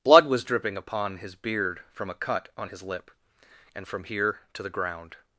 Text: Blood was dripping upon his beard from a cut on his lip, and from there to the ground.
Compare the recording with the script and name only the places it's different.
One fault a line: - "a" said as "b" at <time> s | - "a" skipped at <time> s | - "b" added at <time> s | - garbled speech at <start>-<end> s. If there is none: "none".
- "there" said as "here" at 4.1 s